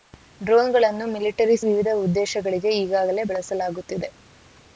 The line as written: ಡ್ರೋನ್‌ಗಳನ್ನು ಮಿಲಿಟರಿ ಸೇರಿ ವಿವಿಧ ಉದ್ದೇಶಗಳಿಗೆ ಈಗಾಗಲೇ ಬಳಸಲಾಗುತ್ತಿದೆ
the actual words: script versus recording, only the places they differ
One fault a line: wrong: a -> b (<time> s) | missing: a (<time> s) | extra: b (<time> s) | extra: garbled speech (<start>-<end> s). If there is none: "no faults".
missing: ಸೇರಿ (1.6 s)